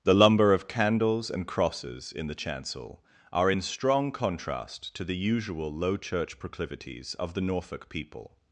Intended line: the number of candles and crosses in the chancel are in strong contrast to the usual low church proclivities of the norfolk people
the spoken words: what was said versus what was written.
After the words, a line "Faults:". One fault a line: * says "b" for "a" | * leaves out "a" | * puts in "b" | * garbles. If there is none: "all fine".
the lumber of candles and crosses in the chancel are in strong contrast to the usual low church proclivities of the norfolk people
Faults:
* says "lumber" for "number"